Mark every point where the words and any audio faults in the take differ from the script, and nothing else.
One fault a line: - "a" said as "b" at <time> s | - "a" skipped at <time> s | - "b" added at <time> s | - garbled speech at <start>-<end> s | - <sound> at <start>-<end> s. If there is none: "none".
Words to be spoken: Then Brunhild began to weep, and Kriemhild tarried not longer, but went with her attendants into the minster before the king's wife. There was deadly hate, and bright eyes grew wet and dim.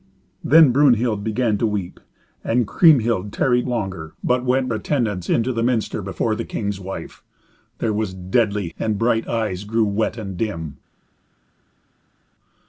- "not" skipped at 3.7 s
- "with her" skipped at 4.7 s
- "hate" skipped at 8.7 s